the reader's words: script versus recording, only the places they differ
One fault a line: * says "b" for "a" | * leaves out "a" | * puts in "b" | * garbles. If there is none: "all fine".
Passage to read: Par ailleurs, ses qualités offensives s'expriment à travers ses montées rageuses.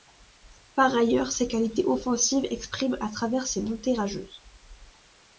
all fine